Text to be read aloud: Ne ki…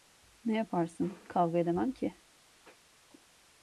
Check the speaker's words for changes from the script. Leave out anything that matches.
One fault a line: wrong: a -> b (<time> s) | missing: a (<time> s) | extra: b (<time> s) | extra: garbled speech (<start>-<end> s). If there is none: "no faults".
extra: yaparsın Kavga edemem (0.6 s)